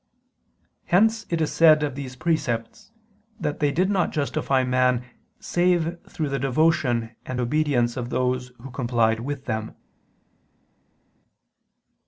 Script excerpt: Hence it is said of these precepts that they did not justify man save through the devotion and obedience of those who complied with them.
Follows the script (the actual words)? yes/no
yes